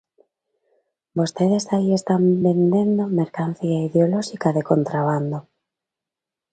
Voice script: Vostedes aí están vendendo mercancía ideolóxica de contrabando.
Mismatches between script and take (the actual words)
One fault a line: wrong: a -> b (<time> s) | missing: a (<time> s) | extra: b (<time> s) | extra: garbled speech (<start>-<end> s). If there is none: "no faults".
no faults